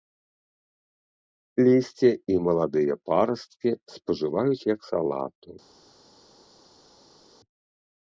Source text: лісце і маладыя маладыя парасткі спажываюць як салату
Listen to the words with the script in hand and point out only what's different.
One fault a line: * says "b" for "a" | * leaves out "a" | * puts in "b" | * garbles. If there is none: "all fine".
* leaves out "маладыя"